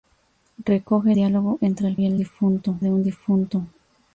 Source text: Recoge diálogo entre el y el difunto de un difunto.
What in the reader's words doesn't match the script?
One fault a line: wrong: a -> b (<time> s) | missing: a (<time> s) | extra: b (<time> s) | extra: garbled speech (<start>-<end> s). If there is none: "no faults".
no faults